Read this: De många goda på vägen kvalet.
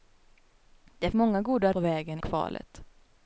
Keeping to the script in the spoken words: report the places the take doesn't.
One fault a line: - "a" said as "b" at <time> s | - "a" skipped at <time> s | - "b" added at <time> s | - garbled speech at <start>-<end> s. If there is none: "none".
none